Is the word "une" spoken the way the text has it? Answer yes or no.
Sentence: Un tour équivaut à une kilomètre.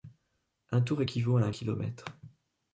no